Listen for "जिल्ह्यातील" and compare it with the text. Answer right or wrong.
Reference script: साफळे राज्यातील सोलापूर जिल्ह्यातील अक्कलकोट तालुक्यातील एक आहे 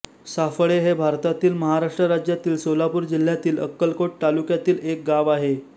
right